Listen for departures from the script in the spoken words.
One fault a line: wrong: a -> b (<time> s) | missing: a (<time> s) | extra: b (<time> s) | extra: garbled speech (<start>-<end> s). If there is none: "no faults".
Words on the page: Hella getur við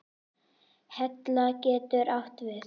extra: átt (2.2 s)